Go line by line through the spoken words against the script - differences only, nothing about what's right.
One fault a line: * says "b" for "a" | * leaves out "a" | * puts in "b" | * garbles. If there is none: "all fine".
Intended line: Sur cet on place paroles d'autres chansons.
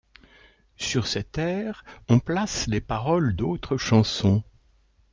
* puts in "air"
* puts in "les"